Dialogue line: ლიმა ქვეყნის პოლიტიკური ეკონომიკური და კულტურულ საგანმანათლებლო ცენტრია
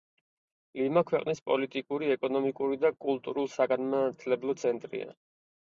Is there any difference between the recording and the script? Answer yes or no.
no